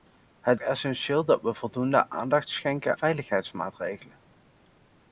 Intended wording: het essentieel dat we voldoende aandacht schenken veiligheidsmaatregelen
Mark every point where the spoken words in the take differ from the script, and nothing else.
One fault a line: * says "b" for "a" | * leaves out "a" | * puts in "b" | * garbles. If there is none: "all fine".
all fine